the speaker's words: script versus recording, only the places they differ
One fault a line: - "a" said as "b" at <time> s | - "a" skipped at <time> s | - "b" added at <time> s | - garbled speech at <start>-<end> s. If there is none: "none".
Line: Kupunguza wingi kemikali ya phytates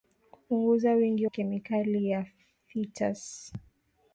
none